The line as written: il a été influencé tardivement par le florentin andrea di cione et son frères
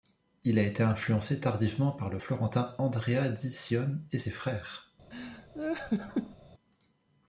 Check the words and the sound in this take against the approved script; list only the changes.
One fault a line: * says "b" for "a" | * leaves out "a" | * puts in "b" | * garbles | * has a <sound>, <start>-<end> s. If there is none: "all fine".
* says "ses" for "son"
* has a laugh, 5.1-6.4 s